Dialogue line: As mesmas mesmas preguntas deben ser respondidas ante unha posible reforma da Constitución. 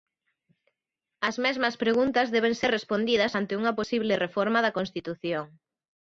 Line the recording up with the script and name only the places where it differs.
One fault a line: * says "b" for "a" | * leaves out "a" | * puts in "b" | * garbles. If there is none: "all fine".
* leaves out "mesmas"